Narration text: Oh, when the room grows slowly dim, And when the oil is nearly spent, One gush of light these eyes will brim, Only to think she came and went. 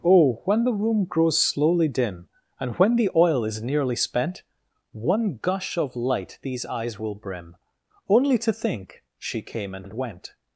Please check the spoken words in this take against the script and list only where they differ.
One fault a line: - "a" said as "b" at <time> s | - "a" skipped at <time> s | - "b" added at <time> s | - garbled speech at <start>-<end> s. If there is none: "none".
- "and" added at 9.8 s